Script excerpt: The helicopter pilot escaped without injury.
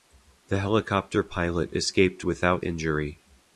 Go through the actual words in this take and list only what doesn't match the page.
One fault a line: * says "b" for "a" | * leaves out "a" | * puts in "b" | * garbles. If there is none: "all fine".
all fine